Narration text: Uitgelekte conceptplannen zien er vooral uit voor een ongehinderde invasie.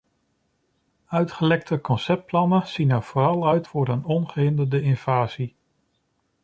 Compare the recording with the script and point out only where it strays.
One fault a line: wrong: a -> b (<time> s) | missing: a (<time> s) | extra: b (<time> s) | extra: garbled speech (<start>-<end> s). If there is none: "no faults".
no faults